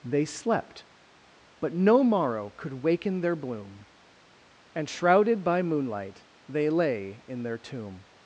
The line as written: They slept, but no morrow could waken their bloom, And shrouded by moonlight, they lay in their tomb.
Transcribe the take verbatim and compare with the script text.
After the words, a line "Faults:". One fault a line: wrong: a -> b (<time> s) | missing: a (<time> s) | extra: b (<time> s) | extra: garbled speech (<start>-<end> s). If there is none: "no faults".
They slept, but no morrow could waken their bloom, And shrouded by moonlight, they lay in their tomb.
Faults:
no faults